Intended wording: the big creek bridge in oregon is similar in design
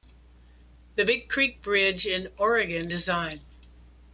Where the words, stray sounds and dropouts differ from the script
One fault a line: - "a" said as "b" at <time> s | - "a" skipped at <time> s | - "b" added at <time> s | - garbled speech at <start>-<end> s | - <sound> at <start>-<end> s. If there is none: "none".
- "is similar in" skipped at 2.9 s